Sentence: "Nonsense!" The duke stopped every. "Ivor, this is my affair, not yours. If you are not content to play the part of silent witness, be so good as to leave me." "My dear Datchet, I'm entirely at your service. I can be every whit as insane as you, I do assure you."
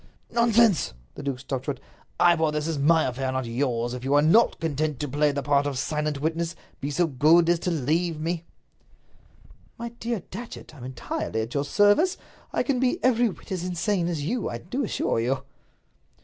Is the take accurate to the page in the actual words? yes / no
no